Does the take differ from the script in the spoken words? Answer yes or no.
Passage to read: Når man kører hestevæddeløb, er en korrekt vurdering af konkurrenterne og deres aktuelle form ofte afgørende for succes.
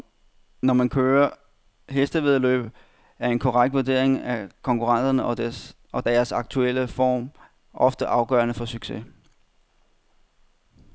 no